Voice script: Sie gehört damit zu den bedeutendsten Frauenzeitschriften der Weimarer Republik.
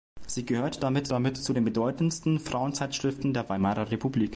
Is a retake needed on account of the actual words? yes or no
yes